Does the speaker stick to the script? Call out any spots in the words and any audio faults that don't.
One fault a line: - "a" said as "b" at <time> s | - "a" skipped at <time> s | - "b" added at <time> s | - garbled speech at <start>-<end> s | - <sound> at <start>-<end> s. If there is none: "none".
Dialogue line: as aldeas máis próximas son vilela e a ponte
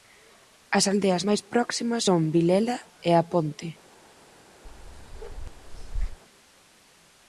- bark at 4.6-6.2 s